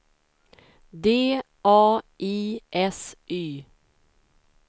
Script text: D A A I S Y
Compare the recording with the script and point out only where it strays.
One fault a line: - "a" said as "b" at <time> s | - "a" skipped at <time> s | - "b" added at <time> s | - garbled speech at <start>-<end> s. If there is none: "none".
- "A" skipped at 2.0 s